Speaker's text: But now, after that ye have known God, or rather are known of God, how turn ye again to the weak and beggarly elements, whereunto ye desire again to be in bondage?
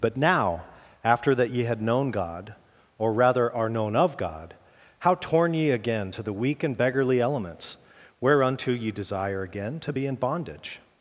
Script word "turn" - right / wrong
wrong